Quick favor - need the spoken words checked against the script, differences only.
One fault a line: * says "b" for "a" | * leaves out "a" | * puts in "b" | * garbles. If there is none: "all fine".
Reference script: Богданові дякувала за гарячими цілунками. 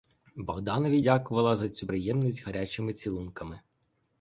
* puts in "цю приємність"